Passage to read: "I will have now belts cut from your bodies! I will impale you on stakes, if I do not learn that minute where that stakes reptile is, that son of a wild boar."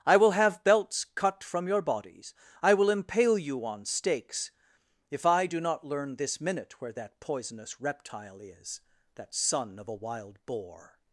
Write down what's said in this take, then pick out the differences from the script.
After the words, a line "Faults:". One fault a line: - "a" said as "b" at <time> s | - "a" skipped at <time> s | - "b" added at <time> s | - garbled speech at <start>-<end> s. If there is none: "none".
"I will have belts cut from your bodies! I will impale you on stakes, if I do not learn this minute where that poisonous reptile is, that son of a wild boar."
Faults:
- "now" skipped at 0.6 s
- "that" said as "this" at 6.1 s
- "stakes" said as "poisonous" at 7.2 s